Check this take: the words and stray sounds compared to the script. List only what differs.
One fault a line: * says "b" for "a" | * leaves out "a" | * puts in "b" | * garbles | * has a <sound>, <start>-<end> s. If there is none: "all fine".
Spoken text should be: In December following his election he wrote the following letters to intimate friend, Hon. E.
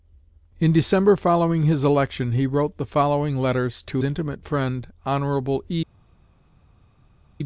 all fine